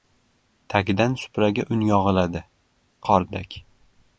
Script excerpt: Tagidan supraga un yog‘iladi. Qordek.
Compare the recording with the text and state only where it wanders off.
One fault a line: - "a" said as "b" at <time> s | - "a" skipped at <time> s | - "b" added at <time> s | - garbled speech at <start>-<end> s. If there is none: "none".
none